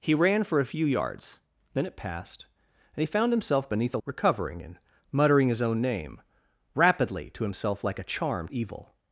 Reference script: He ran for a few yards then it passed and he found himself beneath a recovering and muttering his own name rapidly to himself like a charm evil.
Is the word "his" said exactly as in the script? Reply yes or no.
yes